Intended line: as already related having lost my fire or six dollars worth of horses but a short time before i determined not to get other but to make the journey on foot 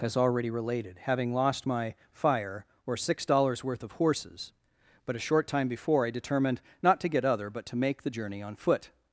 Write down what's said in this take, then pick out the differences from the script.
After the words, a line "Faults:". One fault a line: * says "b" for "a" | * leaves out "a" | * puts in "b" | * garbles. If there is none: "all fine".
as already related having lost my fire or six dollars worth of horses but a short time before i determined not to get other but to make the journey on foot
Faults:
all fine